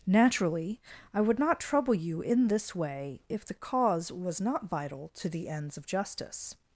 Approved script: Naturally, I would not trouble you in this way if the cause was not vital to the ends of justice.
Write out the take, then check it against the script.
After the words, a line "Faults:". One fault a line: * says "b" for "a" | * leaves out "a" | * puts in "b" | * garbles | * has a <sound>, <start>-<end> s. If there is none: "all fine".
Naturally, I would not trouble you in this way if the cause was not vital to the ends of justice.
Faults:
all fine